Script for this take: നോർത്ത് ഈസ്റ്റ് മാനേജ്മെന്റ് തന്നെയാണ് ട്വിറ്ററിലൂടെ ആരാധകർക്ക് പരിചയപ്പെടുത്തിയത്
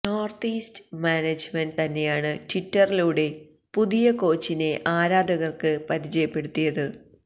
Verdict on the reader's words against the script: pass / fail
fail